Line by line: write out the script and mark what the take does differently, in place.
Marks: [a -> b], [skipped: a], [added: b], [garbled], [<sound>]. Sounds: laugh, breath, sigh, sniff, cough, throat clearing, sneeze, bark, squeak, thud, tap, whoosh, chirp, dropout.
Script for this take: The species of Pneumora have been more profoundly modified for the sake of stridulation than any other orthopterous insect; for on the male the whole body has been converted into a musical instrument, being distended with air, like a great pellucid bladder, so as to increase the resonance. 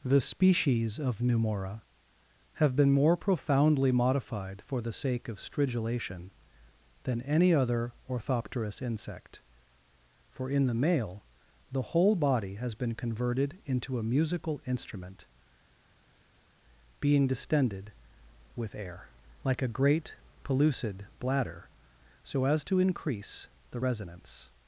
The species of Pneumora have been more profoundly modified for the sake of stridulation than any other orthopterous insect; for [on -> in] the male the whole body has been converted into a musical instrument, being distended with air, like a great pellucid bladder, so as to increase the resonance.